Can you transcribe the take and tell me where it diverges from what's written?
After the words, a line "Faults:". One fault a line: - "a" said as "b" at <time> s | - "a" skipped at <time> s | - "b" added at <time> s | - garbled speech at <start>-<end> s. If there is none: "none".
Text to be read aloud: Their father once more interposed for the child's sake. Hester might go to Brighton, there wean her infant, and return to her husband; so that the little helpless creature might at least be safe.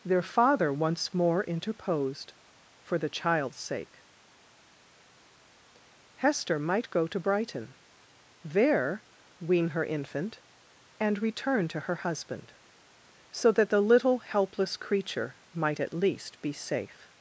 Their father once more interposed for the child's sake. Hester might go to Brighton, there wean her infant, and return to her husband; so that the little helpless creature might at least be safe.
Faults:
none